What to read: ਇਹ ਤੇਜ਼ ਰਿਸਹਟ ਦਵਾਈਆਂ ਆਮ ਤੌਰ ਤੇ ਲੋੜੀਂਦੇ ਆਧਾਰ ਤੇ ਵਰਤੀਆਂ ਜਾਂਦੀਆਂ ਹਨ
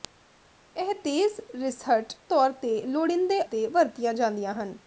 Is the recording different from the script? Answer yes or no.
yes